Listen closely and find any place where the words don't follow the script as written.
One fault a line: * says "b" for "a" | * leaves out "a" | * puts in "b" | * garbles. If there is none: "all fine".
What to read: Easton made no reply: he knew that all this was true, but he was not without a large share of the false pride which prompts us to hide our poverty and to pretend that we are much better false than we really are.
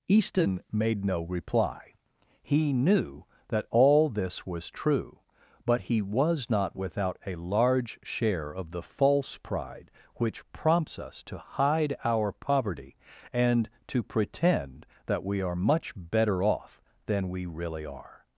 * says "off" for "false"